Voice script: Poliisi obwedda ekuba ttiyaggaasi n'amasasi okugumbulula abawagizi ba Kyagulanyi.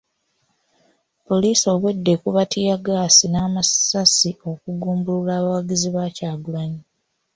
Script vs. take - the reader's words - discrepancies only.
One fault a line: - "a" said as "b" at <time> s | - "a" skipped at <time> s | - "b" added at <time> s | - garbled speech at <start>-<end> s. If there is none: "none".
none